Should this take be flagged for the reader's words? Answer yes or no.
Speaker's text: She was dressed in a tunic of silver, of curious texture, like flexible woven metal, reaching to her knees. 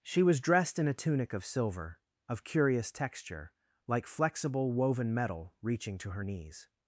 no